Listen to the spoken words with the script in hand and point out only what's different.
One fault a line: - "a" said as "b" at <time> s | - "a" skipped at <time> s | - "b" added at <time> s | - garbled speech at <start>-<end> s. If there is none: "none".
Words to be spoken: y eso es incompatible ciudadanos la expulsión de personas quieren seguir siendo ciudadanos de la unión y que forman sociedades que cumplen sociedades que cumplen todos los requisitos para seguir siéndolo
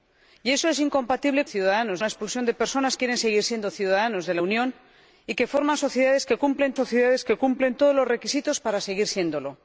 none